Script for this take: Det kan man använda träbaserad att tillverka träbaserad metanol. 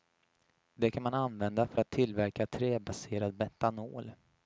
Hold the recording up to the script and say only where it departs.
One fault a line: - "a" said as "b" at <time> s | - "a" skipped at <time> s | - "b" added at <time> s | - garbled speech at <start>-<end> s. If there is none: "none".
- "träbaserad" said as "för" at 1.7 s